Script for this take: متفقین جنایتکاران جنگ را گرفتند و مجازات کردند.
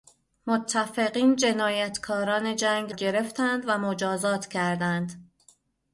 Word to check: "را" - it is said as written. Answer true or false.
false